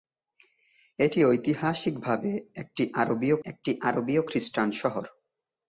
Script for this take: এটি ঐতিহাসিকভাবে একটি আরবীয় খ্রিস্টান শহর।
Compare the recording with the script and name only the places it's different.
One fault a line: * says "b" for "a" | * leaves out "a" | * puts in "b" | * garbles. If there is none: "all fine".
* puts in "একটি আরবীয়"